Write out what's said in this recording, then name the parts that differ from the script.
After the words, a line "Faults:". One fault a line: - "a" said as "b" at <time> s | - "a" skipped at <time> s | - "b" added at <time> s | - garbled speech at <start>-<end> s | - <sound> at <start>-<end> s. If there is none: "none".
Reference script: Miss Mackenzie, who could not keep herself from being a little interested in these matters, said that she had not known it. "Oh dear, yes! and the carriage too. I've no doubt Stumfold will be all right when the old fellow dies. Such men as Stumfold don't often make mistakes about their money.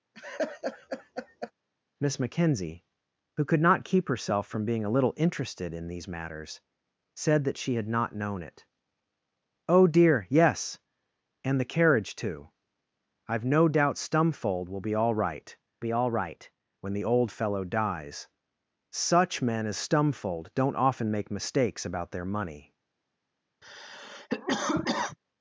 Miss Mackenzie, who could not keep herself from being a little interested in these matters, said that she had not known it. "Oh dear, yes! and the carriage too. I've no doubt Stumfold will be all right be all right when the old fellow dies. Such men as Stumfold don't often make mistakes about their money.
Faults:
- laugh at 0.1-1.5 s
- "be all right" added at 15.8 s
- cough at 23.6-25.2 s